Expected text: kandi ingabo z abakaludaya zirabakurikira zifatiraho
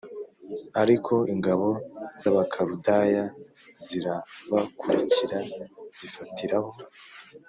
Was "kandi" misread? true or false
true